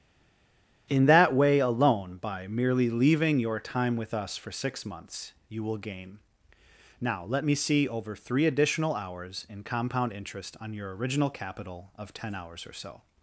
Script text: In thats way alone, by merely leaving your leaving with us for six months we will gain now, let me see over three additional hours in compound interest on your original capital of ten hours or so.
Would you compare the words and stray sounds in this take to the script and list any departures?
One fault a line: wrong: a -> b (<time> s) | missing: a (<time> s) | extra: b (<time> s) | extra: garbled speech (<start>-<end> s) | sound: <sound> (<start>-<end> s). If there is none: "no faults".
wrong: thats -> that (1.0 s)
wrong: leaving -> time (3.6 s)
wrong: we -> you (5.5 s)